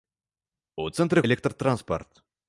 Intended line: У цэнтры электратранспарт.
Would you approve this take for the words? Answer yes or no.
yes